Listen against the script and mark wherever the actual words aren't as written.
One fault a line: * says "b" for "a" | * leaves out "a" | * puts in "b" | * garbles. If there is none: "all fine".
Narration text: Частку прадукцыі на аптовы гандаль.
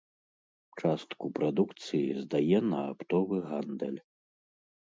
* puts in "здае"